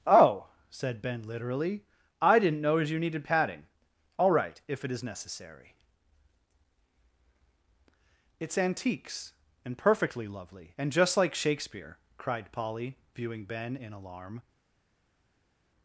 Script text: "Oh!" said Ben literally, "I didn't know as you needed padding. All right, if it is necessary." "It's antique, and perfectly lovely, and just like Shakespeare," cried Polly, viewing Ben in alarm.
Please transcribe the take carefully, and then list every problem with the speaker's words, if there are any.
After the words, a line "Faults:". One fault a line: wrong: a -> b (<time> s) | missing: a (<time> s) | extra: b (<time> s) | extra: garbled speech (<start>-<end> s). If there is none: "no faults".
"Oh!" said Ben literally, "I didn't know as you needed padding. All right, if it is necessary." "It's antiques, and perfectly lovely, and just like Shakespeare," cried Polly, viewing Ben in alarm.
Faults:
wrong: antique -> antiques (8.6 s)